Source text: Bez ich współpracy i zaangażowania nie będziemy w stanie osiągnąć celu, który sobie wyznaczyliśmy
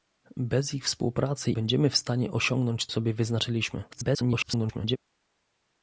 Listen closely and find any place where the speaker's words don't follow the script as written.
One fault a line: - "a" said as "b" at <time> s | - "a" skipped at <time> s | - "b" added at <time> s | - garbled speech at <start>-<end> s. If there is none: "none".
- "i zaangażowania nie" skipped at 1.5 s
- "celu który" skipped at 2.9 s
- garbled speech at 3.9-5.0 s